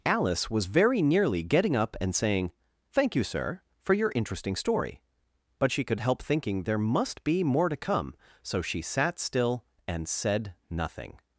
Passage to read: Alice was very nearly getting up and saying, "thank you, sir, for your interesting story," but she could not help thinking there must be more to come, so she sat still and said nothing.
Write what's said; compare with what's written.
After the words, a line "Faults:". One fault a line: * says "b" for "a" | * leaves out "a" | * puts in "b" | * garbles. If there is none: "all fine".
Alice was very nearly getting up and saying, "thank you, sir, for your interesting story," but she could help thinking there must be more to come, so she sat still and said nothing.
Faults:
* leaves out "not"